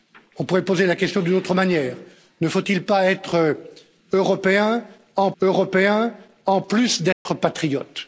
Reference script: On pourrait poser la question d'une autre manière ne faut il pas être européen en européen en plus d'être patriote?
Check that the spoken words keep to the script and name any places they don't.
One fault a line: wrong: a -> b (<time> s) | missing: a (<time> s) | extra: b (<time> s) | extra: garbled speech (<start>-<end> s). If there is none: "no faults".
no faults